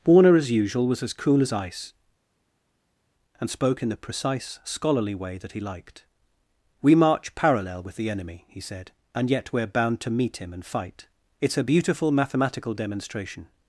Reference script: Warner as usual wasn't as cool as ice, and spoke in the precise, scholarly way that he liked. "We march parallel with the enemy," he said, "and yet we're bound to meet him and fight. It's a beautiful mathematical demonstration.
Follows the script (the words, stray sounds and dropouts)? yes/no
no